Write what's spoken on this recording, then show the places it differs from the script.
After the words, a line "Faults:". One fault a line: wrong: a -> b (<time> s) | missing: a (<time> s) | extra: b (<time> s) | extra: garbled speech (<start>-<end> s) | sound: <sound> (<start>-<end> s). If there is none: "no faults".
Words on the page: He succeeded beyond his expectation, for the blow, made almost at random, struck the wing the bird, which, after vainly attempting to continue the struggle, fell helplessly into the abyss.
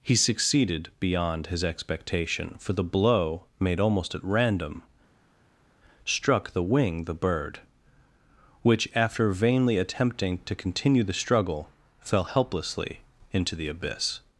He succeeded beyond his expectation, for the blow, made almost at random, struck the wing the bird, which, after vainly attempting to continue the struggle, fell helplessly into the abyss.
Faults:
no faults